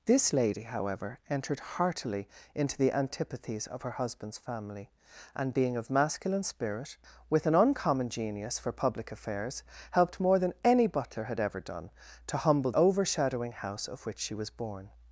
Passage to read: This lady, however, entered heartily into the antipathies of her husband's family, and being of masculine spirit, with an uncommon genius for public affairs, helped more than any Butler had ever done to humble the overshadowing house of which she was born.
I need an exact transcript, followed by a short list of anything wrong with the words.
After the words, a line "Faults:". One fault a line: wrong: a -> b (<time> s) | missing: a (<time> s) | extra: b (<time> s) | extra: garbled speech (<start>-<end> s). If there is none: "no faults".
This lady, however, entered heartily into the antipathies of her husband's family, and being of masculine spirit, with an uncommon genius for public affairs, helped more than any Butler had ever done to humble overshadowing house of which she was born.
Faults:
missing: the (12.7 s)